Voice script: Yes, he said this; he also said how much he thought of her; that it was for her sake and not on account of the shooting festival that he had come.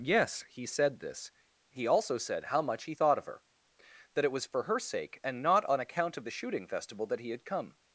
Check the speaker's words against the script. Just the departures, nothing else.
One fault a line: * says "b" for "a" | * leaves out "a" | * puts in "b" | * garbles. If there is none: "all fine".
all fine